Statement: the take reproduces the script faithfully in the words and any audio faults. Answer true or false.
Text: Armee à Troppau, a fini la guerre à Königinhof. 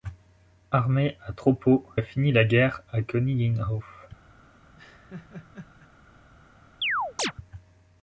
false